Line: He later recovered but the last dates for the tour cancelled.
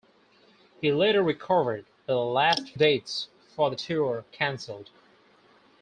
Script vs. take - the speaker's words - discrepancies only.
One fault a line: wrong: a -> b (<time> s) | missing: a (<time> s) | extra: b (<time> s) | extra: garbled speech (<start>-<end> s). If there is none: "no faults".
no faults